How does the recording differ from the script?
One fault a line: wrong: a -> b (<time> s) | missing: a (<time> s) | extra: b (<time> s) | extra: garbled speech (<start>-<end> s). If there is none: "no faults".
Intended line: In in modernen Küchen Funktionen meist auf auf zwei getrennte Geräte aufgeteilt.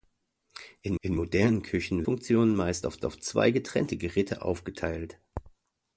no faults